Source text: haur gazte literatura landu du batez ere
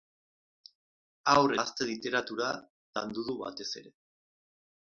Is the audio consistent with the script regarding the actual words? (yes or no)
yes